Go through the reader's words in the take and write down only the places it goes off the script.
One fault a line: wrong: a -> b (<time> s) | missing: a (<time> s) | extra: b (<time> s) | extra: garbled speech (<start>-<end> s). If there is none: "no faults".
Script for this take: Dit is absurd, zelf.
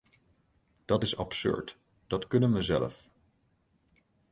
wrong: Dit -> Dat (0.8 s)
extra: dat kunnen we (2.1 s)